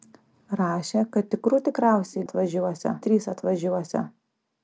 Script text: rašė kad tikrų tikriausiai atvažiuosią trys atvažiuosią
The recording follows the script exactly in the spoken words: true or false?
true